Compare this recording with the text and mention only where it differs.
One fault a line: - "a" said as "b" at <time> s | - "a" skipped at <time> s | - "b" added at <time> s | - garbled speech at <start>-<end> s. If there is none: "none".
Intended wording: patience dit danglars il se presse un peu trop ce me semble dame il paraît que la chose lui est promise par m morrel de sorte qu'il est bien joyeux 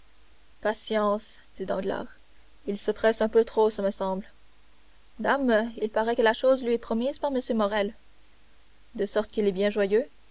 none